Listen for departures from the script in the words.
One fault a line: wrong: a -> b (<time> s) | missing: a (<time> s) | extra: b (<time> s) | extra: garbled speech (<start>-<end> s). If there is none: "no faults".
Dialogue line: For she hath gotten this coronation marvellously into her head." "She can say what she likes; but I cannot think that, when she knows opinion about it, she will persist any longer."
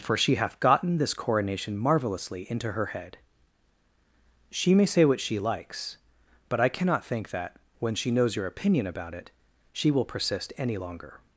wrong: can -> may (4.7 s)
extra: your (8.3 s)